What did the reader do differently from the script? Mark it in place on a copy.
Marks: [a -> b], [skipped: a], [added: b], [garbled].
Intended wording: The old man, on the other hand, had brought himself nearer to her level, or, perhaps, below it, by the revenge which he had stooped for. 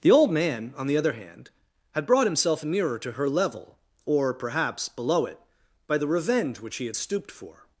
The old man, on the other hand, had brought himself nearer to her level, or, perhaps, below it, by the revenge which he had stooped for.